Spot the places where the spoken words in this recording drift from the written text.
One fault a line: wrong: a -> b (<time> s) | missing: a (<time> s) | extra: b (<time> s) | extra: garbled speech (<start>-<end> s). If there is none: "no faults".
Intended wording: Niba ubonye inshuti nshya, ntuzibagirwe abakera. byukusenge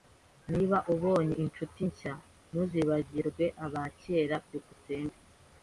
no faults